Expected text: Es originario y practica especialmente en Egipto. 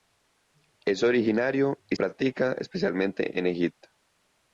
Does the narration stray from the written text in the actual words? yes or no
no